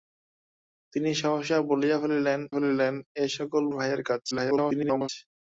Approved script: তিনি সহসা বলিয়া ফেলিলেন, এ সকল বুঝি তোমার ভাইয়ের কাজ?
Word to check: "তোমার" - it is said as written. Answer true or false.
false